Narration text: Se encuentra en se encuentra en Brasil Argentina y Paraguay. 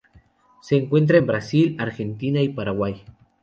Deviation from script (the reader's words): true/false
true